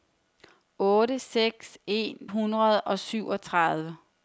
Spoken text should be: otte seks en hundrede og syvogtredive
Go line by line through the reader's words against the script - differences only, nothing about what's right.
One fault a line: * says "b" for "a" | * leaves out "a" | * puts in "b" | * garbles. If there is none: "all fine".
all fine